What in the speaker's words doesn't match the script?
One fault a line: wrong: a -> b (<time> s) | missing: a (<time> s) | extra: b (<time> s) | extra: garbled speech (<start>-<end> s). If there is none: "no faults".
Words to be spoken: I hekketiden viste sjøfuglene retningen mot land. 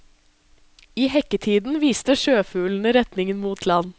no faults